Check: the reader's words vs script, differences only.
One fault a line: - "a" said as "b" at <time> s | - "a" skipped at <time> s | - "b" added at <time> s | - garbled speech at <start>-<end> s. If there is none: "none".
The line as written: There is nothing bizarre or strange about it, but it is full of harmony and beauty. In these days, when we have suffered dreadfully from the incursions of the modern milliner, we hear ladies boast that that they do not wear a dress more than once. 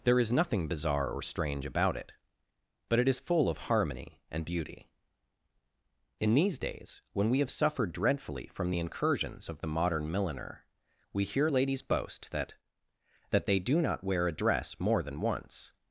none